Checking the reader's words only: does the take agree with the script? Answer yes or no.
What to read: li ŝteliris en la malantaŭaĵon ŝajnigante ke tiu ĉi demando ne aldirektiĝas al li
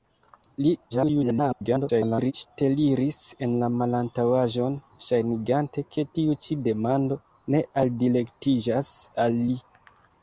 no